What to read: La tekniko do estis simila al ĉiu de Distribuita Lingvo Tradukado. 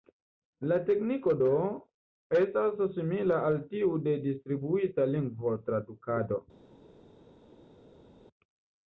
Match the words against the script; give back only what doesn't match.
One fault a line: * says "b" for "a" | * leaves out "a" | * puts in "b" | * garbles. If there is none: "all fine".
* says "estas" for "estis"
* says "tiu" for "ĉiu"